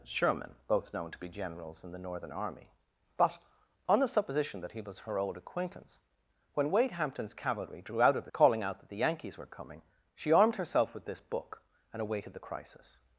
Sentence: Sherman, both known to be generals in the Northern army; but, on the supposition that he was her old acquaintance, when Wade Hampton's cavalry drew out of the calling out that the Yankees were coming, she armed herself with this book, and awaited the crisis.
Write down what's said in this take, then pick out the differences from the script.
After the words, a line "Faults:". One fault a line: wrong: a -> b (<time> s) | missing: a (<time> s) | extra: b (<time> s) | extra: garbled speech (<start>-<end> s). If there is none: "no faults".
Sherman, both known to be generals in the Northern army; but, on the supposition that he was her old acquaintance, when Wade Hampton's cavalry drew out of the calling out that the Yankees were coming, she armed herself with this book, and awaited the crisis.
Faults:
no faults